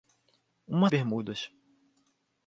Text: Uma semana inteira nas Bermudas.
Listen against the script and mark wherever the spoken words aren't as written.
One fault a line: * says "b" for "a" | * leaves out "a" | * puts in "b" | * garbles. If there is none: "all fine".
* leaves out "semana inteira nas"